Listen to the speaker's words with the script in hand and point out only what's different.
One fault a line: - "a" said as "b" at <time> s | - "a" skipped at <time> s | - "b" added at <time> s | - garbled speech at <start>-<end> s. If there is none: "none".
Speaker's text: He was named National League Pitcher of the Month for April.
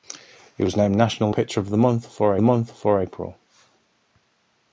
- "League" skipped at 1.3 s
- "Month for" added at 2.4 s